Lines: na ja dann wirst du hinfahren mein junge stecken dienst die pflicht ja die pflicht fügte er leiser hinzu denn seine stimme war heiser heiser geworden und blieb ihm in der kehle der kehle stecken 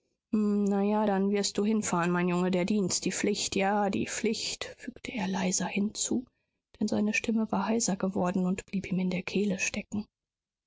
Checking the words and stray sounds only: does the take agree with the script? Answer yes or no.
no